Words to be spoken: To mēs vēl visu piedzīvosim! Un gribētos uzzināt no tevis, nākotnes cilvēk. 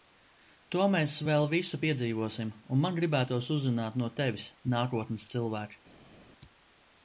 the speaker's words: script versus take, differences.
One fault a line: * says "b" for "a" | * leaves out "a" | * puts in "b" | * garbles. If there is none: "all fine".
* puts in "man"